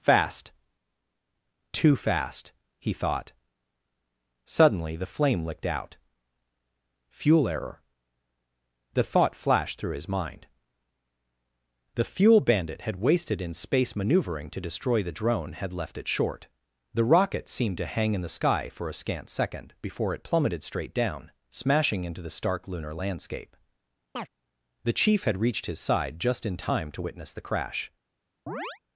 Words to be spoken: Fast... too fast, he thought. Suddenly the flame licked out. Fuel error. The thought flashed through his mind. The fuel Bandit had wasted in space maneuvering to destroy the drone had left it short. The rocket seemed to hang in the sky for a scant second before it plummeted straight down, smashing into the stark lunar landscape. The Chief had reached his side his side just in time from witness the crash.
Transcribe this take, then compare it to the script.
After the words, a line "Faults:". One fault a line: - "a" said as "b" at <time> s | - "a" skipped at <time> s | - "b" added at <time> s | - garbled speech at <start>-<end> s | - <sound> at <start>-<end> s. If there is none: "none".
Fast... too fast, he thought. Suddenly the flame licked out. Fuel error. The thought flashed through his mind. The fuel Bandit had wasted in space maneuvering to destroy the drone had left it short. The rocket seemed to hang in the sky for a scant second before it plummeted straight down, smashing into the stark lunar landscape. The Chief had reached his side just in time to witness the crash.
Faults:
- chirp at 24.1-24.3 s
- "his side" skipped at 26.2 s
- "from" said as "to" at 26.9 s
- chirp at 28.5-28.8 s